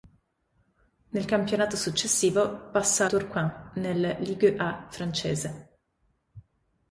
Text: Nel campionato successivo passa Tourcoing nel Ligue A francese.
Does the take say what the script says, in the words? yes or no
yes